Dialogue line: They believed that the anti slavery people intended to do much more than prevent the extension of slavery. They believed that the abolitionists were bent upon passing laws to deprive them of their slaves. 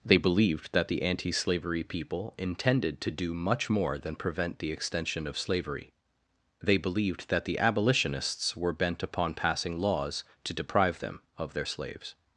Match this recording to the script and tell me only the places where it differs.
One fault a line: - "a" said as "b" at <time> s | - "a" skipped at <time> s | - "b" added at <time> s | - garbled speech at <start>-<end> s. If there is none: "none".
none